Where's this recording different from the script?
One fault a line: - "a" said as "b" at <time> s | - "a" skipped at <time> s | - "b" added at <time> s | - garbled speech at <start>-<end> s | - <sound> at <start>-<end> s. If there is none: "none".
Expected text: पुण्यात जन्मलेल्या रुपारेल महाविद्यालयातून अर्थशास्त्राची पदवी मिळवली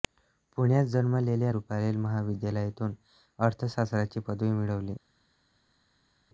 none